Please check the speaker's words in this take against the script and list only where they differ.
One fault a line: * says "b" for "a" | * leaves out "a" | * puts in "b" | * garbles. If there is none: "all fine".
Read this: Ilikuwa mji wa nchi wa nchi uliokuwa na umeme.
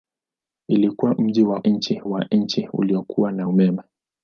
all fine